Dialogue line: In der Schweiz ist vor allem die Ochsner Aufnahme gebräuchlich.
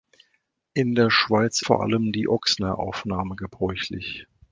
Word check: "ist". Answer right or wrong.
wrong